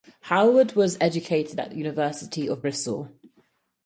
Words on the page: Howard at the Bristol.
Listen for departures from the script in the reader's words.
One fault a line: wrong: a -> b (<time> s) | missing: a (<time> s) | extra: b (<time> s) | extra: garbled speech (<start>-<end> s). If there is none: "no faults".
extra: was educated (0.7 s)
extra: University of (1.8 s)